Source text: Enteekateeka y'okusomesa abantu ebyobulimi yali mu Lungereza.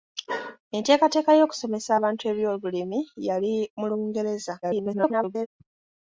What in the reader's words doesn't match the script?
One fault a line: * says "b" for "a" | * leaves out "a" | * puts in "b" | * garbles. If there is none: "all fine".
* garbles